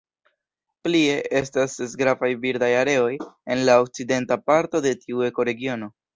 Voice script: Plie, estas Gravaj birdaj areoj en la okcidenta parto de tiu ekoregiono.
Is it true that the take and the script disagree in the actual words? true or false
true